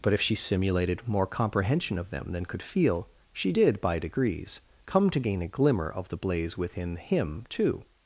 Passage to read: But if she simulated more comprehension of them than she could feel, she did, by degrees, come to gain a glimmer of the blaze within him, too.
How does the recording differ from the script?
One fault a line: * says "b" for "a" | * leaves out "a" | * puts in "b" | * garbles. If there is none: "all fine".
* leaves out "she"